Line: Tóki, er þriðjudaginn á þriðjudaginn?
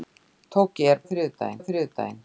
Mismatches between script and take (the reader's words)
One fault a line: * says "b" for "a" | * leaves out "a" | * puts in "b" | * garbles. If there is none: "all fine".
all fine